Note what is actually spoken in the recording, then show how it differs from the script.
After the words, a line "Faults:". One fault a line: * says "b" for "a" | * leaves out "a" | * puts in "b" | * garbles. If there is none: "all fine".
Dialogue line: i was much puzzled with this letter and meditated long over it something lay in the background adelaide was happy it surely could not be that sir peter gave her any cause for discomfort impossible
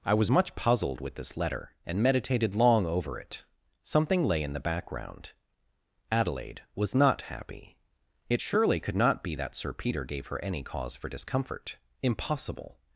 i was much puzzled with this letter and meditated long over it something lay in the background adelaide was not happy it surely could not be that sir peter gave her any cause for discomfort impossible
Faults:
* puts in "not"